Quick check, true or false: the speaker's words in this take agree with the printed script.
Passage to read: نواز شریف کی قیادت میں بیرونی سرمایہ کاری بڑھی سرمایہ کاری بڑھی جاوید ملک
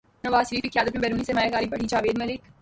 false